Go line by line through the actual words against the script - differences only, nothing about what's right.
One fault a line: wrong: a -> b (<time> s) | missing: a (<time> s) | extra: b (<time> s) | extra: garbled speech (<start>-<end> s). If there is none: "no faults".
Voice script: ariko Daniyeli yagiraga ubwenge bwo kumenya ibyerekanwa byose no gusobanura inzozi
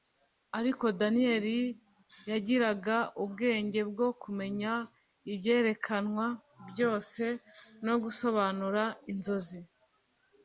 no faults